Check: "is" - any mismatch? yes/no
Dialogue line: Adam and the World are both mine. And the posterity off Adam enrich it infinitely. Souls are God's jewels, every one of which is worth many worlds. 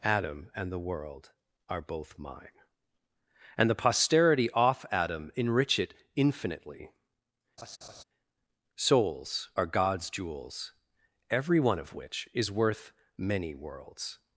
no